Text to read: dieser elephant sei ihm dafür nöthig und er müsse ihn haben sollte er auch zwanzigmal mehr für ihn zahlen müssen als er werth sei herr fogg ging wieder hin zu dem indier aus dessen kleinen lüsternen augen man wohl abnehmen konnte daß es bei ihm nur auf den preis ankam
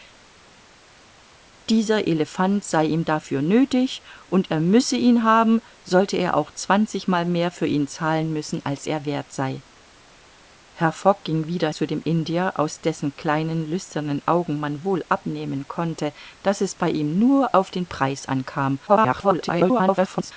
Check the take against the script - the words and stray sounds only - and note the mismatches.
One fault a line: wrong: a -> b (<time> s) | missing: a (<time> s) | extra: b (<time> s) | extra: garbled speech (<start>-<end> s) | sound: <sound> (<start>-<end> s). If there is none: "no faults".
missing: hin (11.7 s)
extra: garbled speech (18.9-20.3 s)